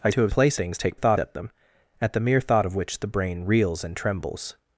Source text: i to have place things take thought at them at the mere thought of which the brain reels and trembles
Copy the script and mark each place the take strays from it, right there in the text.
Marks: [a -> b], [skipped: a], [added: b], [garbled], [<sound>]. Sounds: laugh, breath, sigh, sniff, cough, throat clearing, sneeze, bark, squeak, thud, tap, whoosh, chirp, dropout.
i to have place things take thought at them at the mere thought of which the brain reels and trembles